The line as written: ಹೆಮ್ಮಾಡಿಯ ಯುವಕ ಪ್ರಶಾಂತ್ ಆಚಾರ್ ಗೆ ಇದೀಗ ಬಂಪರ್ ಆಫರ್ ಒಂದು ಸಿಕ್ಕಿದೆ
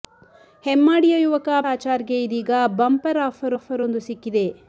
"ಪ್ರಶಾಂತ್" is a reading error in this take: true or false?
true